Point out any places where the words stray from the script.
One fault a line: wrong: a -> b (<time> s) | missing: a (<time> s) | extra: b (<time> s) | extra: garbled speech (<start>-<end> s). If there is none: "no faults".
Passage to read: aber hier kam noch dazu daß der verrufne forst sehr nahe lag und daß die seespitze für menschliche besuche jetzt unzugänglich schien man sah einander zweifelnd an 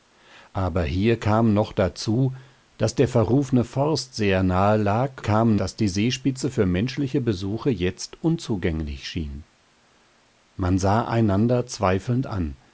wrong: und -> kam (5.2 s)